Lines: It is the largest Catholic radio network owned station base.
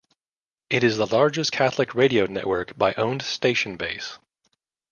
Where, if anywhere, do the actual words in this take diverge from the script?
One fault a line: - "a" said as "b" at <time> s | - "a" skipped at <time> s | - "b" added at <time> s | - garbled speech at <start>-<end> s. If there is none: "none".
- "by" added at 2.8 s